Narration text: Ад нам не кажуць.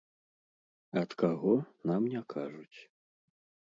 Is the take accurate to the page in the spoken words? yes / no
no